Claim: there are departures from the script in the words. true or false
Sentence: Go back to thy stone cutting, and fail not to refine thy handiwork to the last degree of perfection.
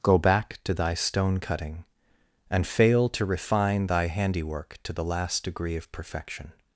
true